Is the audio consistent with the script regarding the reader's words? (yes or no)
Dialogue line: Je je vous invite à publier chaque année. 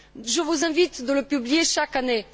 no